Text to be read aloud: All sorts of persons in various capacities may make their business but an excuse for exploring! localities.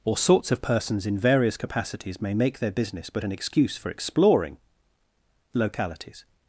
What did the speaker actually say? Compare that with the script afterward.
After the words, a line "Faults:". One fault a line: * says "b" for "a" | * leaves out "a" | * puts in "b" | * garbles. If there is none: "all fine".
Or sorts of persons in various capacities may make their business but an excuse for exploring! localities.
Faults:
* says "Or" for "All"